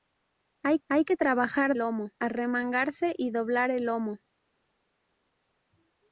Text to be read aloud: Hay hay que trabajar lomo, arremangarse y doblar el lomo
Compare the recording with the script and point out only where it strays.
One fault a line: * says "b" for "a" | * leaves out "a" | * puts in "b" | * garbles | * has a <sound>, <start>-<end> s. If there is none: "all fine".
all fine